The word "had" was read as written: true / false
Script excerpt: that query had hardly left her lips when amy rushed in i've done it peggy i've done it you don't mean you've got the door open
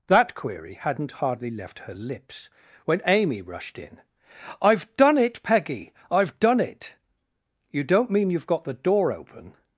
false